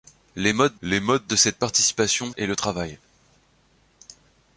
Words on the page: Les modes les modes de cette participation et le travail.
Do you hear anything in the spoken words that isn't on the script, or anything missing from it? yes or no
no